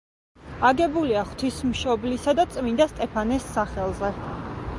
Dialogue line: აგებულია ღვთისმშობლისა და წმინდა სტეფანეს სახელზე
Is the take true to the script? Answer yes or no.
yes